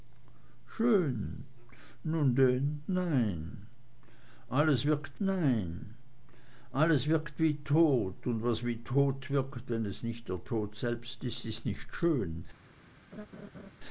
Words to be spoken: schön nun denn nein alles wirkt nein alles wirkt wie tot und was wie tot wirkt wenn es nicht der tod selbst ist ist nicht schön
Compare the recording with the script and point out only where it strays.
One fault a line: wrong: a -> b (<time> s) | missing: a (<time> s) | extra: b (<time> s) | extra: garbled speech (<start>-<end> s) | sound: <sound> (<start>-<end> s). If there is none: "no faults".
sound: laugh (13.1-13.7 s)